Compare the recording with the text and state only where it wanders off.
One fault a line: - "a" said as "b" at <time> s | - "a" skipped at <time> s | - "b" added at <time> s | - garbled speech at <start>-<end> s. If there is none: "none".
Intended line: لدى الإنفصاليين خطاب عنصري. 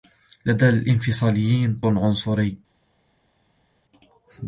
- "خطاب" skipped at 1.8 s